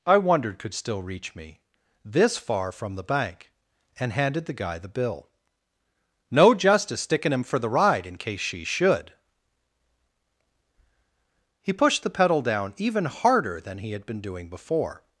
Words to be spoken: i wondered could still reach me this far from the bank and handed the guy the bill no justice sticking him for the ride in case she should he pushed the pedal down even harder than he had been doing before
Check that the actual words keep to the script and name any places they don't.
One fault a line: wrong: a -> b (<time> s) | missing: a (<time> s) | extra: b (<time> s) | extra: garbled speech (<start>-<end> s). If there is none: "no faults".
no faults